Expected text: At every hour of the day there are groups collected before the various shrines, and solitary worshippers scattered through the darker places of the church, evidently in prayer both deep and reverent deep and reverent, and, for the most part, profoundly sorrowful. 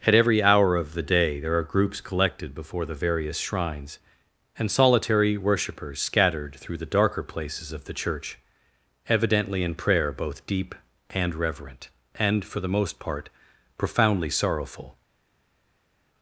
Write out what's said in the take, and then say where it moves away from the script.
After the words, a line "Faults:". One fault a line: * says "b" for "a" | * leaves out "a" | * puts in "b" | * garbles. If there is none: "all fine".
At every hour of the day there are groups collected before the various shrines, and solitary worshippers scattered through the darker places of the church, evidently in prayer both deep and reverent, and, for the most part, profoundly sorrowful.
Faults:
* leaves out "deep and reverent"